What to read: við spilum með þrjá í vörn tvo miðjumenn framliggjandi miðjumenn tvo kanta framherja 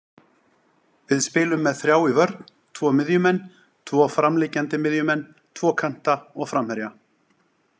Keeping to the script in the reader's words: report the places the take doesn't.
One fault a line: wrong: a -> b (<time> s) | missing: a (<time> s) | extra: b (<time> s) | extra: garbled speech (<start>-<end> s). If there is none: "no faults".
extra: tvo (3.9 s)
extra: og (6.3 s)